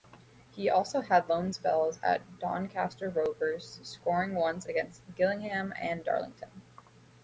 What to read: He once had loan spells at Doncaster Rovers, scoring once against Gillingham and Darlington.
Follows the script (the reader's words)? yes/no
no